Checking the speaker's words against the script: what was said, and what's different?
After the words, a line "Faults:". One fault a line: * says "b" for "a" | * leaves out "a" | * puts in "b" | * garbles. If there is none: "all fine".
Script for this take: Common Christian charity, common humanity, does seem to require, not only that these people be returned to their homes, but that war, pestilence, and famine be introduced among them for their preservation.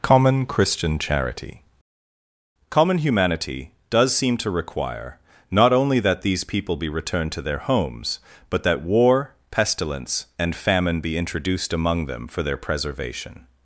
Common Christian charity, common humanity, does seem to require, not only that these people be returned to their homes, but that war, pestilence, and famine be introduced among them for their preservation.
Faults:
all fine